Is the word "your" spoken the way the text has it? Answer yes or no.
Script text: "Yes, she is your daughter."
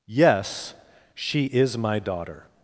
no